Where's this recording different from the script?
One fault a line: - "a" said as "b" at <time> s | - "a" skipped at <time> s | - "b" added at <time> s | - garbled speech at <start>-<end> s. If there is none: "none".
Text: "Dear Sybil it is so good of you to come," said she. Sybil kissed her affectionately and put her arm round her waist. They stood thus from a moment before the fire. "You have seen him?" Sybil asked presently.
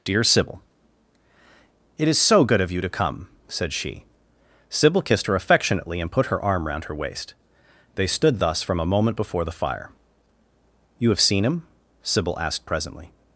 none